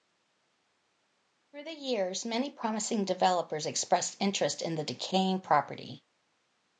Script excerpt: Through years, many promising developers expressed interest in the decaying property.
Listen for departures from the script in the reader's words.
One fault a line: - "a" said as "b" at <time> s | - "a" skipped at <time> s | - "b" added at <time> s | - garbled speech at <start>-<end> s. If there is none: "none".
- "the" added at 1.6 s